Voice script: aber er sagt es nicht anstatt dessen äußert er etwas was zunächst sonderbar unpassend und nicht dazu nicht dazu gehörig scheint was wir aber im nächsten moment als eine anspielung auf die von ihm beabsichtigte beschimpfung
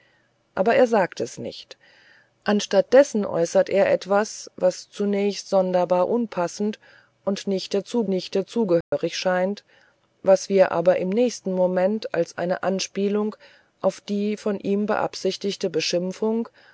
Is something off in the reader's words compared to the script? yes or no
no